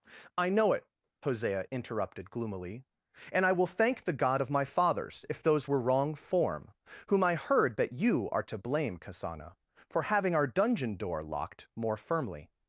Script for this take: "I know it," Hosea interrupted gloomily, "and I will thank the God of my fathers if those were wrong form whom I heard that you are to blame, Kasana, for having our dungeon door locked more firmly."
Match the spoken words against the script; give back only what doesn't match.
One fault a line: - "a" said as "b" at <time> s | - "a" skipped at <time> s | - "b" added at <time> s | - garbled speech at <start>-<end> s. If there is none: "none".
none